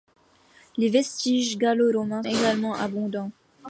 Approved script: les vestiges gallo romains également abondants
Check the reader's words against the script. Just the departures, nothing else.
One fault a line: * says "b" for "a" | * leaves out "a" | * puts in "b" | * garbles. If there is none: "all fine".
all fine